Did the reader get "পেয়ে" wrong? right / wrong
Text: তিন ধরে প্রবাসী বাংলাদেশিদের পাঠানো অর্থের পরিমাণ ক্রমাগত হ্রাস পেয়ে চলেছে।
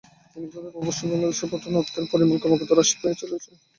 right